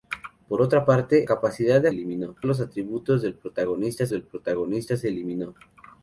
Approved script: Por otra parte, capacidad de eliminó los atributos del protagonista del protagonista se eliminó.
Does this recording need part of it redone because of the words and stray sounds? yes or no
no